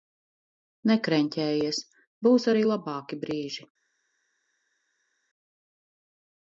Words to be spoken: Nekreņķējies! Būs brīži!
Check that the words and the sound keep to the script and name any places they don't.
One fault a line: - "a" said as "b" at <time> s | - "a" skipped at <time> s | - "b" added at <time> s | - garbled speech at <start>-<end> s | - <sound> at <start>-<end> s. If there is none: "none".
- "arī labāki" added at 2.5 s